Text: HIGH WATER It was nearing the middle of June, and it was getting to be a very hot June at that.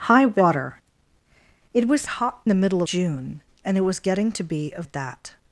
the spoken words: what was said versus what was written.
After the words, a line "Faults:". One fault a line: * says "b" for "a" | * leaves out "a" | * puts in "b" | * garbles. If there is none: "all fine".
HIGH WATER It was hot the middle June, and it was getting to be a at that.
Faults:
* says "hot" for "nearing"
* leaves out "of"
* leaves out "very hot June"